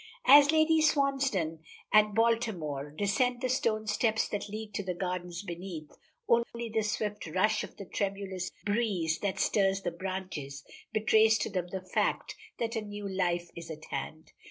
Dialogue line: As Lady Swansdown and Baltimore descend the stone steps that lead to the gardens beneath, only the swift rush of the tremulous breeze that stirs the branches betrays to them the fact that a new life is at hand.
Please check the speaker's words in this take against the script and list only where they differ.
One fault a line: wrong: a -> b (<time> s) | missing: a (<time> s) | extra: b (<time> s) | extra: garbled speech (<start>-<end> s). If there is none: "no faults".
no faults